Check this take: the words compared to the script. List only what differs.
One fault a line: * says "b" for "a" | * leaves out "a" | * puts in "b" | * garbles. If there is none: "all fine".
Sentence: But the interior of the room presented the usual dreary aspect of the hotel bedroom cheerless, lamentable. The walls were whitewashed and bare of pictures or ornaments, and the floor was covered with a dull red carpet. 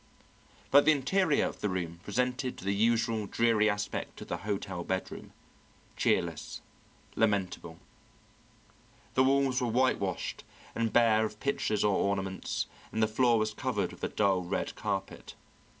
all fine